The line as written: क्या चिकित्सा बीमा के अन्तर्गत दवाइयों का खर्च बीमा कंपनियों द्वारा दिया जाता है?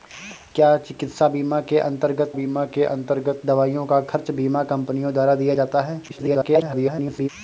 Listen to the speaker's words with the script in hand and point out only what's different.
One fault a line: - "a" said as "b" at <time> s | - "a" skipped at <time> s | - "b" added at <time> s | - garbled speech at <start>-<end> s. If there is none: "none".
- "बीमा के अन्तर्गत" added at 2.3 s
- garbled speech at 6.1-7.3 s